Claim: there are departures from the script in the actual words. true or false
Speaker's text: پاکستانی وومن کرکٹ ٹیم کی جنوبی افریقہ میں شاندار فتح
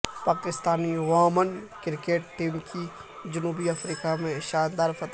false